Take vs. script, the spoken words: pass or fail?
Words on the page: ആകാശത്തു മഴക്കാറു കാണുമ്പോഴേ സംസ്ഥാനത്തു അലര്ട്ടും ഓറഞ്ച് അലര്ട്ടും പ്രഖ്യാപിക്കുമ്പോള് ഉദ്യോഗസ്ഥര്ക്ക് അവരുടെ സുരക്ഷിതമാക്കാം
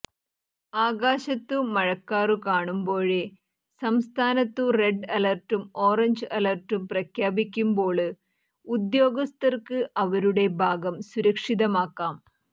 fail